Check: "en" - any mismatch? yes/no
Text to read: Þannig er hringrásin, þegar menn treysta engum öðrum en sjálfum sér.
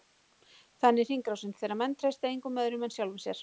no